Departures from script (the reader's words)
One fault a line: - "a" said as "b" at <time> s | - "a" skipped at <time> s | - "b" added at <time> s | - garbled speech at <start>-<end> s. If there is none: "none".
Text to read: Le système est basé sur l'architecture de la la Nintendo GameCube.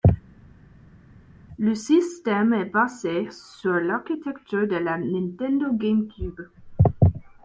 - "la" skipped at 5.0 s